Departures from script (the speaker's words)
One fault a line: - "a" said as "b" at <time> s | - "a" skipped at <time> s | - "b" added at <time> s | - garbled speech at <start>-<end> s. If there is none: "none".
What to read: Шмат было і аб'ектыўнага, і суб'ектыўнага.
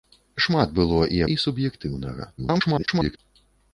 - "аб'ектыўнага" skipped at 1.2 s
- garbled speech at 2.4-3.2 s